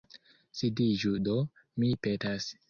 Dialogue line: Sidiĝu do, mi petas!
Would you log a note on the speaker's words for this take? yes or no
no